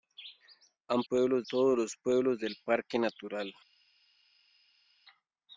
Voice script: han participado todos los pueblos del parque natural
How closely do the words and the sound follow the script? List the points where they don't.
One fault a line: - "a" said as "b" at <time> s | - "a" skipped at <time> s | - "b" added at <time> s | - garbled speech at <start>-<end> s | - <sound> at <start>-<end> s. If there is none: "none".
- "participado" said as "pueblos" at 1.0 s